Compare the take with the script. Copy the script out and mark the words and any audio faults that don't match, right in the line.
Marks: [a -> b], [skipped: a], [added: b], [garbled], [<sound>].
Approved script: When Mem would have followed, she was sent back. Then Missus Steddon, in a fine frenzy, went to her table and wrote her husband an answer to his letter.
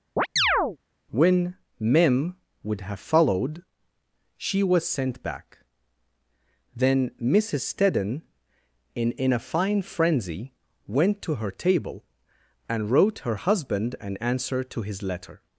[chirp] When Mem would have followed, she was sent back. Then Missus Steddon, in [added: in] a fine frenzy, went to her table and wrote her husband an answer to his letter.